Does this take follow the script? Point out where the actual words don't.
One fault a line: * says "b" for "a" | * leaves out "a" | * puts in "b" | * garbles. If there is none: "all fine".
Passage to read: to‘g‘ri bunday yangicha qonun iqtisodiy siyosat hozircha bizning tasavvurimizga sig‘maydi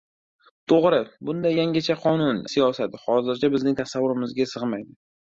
* leaves out "iqtisodiy"